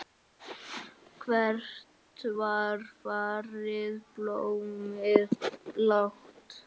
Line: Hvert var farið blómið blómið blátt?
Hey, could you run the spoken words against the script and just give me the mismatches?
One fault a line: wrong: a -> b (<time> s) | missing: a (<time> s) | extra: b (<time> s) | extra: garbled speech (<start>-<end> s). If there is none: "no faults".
missing: blómið (5.4 s)